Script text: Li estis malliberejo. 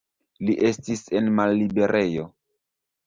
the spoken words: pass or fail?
fail